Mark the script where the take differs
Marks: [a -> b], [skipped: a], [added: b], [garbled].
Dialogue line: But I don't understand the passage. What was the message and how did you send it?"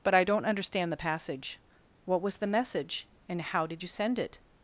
But I don't understand the passage. What was the message and how did you send it?"